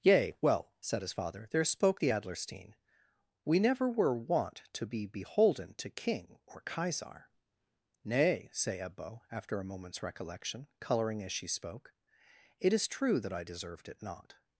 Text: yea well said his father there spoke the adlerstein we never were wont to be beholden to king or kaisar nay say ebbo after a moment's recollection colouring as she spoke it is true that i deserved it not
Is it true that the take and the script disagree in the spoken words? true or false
false